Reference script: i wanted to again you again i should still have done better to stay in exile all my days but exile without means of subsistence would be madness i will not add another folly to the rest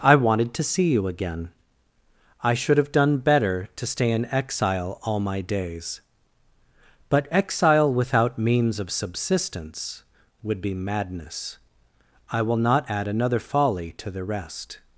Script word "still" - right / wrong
wrong